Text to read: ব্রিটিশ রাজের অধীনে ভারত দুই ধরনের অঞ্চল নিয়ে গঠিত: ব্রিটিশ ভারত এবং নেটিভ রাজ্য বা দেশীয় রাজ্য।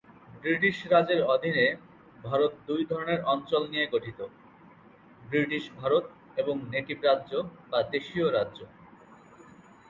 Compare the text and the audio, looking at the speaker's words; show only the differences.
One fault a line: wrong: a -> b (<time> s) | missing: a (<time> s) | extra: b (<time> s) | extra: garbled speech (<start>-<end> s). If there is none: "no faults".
no faults